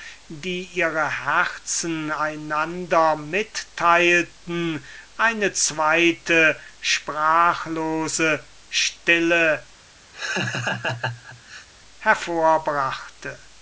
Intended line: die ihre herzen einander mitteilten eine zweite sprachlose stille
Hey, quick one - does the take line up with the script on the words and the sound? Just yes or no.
no